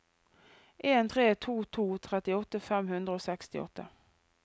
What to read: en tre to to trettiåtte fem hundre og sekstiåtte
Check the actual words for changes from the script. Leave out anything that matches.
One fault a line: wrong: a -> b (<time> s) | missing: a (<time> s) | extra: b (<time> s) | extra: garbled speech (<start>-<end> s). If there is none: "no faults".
no faults